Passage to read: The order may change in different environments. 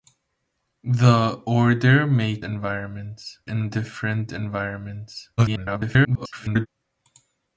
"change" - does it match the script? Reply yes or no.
no